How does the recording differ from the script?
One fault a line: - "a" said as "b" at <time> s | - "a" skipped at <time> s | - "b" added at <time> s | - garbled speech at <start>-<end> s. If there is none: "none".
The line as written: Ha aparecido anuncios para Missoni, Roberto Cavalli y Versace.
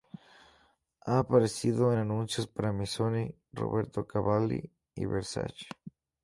none